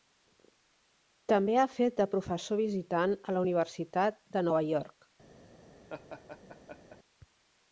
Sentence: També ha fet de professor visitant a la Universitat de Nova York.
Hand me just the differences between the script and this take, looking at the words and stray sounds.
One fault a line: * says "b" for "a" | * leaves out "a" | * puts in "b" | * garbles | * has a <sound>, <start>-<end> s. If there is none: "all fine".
* has a laugh, 5.9-7.0 s